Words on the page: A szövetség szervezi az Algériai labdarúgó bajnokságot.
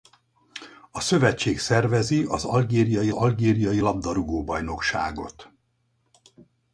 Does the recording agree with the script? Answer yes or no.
no